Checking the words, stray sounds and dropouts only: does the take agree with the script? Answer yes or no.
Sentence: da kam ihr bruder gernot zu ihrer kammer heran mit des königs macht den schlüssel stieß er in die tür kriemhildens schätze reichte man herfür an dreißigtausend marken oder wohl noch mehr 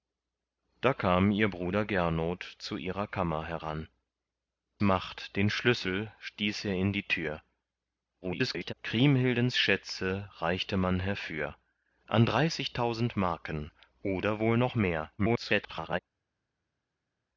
no